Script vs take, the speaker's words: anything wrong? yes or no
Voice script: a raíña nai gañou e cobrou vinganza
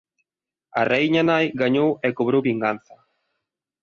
no